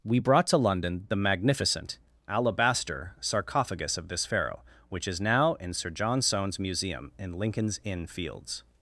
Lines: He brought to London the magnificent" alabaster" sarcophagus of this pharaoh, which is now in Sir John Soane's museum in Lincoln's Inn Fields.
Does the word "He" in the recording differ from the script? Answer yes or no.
yes